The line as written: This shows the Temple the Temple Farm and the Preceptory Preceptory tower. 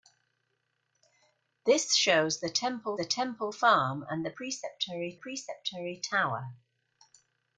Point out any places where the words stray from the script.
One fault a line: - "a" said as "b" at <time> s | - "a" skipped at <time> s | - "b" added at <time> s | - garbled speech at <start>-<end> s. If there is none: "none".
none